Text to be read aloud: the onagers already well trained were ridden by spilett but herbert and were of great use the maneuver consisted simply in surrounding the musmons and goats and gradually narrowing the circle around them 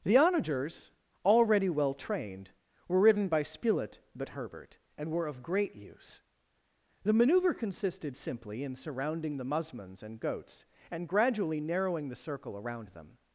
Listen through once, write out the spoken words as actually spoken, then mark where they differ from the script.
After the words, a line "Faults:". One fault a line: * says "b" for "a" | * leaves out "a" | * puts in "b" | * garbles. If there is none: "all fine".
the onagers already well trained were ridden by spilett but herbert and were of great use the maneuver consisted simply in surrounding the musmons and goats and gradually narrowing the circle around them
Faults:
all fine